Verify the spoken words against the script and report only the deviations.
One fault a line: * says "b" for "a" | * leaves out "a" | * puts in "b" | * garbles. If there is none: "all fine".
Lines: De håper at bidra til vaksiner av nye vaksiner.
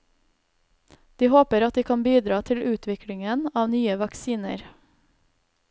* puts in "de kan"
* says "utviklingen" for "vaksiner"